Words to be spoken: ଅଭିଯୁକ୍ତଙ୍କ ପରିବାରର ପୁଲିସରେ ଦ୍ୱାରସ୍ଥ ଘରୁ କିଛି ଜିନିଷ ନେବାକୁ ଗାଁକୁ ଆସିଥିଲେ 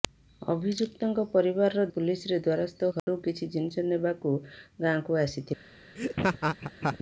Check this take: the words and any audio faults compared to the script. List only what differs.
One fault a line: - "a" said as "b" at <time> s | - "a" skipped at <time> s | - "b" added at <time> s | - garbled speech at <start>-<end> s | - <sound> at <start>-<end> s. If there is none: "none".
- dropout at 3.0-3.1 s
- laugh at 6.0-7.0 s